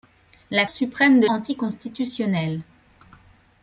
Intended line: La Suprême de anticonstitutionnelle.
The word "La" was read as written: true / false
true